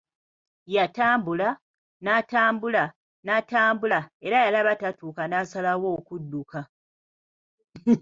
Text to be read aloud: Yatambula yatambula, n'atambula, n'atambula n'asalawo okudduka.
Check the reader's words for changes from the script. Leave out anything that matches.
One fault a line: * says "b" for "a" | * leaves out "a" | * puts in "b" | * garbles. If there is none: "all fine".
* says "n'atambula" for "yatambula"
* says "era yalaba tatuuka" for "n'atambula"